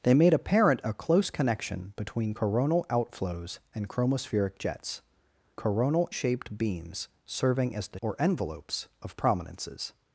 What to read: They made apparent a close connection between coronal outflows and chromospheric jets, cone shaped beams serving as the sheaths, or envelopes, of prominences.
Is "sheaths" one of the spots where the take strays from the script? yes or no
yes